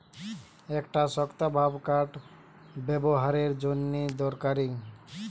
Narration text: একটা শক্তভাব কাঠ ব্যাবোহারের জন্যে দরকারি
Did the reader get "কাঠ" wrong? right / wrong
right